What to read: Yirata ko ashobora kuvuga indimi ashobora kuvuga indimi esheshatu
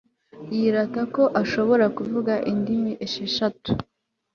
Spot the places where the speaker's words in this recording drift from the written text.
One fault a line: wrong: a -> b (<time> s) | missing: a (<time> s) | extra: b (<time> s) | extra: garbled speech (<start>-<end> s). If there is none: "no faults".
missing: ashobora kuvuga indimi (2.9 s)